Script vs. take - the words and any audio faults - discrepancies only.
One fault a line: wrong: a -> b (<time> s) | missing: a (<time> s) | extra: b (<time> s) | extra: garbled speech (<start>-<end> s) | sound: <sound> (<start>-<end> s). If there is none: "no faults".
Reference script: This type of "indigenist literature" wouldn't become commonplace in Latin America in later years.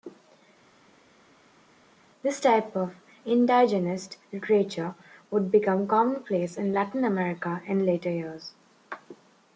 wrong: wouldn't -> would (5.3 s)